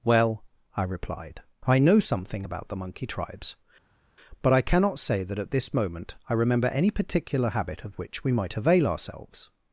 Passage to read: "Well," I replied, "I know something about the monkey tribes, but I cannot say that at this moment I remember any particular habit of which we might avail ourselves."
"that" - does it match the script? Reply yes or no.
yes